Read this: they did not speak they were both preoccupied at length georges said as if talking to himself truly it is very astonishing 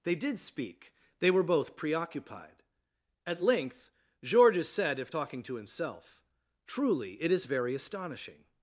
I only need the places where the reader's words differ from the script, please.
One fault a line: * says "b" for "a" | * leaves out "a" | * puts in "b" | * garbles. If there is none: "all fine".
* leaves out "not"
* leaves out "as"